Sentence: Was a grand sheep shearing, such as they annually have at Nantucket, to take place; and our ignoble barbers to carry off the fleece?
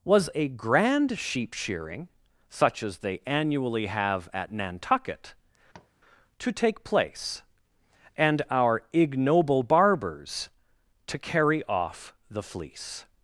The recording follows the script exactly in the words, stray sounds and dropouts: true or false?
false